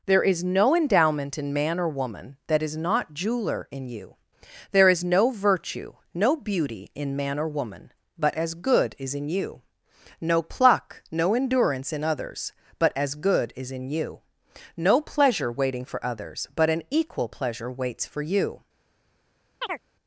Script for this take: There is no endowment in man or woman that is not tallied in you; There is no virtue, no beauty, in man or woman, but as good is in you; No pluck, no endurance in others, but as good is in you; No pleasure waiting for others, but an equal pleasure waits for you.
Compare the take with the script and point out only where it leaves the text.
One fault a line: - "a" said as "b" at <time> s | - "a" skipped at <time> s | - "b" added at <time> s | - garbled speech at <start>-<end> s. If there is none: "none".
- "tallied" said as "jeweler" at 3.1 s